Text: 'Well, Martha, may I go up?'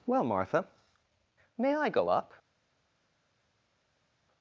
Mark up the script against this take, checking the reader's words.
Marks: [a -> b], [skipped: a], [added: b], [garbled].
'Well, Martha, may I go up?'